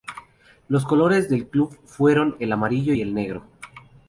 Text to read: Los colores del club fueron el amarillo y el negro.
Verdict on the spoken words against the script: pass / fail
pass